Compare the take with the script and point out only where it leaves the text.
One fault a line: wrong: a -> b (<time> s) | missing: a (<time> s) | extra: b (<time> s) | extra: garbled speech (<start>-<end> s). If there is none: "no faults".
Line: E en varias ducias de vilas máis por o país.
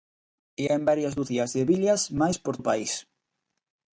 no faults